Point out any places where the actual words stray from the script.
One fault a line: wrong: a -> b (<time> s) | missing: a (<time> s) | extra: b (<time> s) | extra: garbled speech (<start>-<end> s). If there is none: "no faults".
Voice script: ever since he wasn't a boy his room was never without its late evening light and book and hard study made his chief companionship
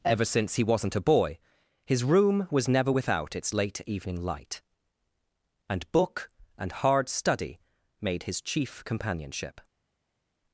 no faults